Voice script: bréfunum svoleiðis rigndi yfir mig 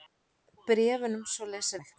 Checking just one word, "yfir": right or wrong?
wrong